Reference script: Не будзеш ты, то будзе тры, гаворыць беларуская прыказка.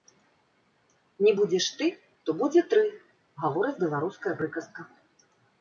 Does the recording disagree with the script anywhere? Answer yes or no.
no